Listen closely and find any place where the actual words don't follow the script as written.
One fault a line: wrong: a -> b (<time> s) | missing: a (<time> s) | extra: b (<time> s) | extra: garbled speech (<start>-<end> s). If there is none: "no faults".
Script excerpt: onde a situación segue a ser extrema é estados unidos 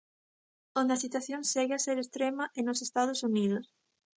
extra: nos (2.6 s)